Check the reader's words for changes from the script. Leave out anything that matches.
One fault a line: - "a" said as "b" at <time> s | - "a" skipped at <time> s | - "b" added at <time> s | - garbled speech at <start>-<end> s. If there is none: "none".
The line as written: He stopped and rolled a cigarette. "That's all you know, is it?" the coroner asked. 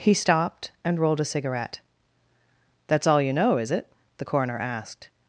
none